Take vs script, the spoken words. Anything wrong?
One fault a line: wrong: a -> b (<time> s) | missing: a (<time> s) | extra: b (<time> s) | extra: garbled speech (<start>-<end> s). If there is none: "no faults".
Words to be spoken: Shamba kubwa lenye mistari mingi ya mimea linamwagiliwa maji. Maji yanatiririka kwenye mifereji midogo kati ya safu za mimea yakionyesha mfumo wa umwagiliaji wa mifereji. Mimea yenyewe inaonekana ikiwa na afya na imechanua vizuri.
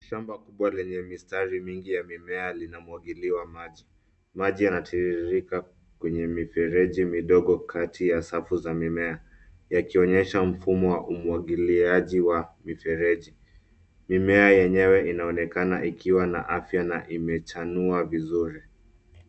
no faults